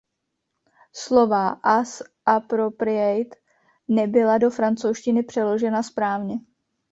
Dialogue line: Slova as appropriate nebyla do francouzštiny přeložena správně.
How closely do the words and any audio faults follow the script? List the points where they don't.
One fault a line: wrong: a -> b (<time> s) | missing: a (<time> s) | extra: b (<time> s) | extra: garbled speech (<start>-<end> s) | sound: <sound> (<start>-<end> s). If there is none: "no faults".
no faults